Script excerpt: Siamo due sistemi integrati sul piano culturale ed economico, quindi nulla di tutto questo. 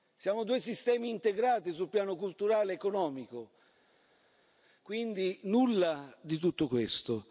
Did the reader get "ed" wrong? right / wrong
right